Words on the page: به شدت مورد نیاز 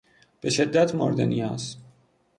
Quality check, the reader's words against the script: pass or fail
pass